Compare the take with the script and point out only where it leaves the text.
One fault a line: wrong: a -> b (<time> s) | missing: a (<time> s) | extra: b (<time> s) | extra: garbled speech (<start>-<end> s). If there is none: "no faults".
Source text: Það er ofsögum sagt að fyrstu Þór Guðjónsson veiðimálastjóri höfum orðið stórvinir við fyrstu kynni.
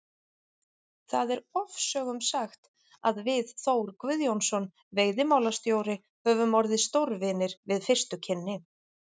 wrong: fyrstu -> við (3.3 s)